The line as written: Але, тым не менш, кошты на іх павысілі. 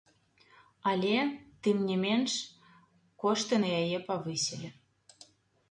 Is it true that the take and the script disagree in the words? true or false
true